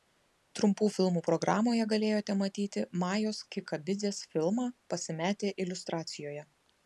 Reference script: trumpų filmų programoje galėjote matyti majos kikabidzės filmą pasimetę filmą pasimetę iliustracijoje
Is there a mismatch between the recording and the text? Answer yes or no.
yes